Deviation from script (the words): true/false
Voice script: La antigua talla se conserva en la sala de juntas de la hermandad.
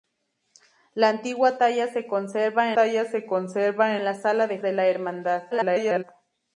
true